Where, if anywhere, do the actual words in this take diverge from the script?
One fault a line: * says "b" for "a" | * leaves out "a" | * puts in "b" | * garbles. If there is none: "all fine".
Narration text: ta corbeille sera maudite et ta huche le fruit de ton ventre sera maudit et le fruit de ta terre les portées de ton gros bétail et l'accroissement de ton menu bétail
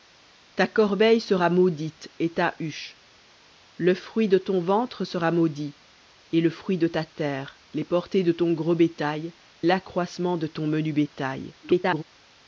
* leaves out "et"
* garbles